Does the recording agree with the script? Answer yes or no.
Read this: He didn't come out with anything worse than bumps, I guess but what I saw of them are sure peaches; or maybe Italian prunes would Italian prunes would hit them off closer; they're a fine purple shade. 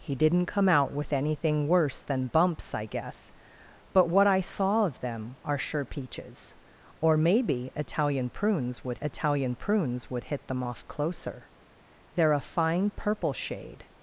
yes